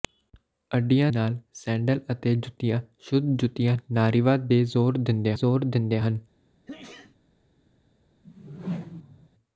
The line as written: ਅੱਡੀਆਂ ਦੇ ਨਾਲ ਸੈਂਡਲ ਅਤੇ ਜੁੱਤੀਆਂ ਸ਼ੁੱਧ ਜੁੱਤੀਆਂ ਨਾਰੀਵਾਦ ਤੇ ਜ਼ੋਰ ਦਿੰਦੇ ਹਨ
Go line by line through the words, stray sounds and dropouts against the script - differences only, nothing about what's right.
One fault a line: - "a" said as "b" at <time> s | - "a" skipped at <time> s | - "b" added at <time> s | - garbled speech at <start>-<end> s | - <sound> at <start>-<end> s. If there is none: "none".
- "ਦੇ" skipped at 1.1 s
- "ਜ਼ੋਰ ਦਿੰਦੇ" added at 5.3 s
- sneeze at 6.7-7.2 s
- whoosh at 8.2-9.3 s